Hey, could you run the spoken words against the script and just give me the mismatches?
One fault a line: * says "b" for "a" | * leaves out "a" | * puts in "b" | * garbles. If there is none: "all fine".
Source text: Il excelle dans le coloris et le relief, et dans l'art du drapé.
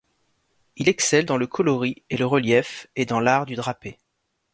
all fine